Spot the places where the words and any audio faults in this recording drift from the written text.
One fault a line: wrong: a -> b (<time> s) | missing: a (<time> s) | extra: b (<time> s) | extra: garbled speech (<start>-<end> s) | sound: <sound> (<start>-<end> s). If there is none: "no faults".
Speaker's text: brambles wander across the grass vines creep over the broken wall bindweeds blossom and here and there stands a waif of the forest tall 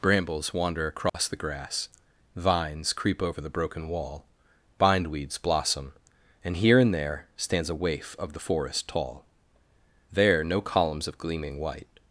sound: dropout (1.1-1.1 s)
extra: there no columns of gleaming white (10.1 s)